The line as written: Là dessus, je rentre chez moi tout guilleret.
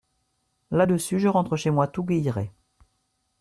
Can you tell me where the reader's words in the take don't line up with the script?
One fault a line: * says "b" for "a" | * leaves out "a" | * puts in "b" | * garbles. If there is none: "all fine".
all fine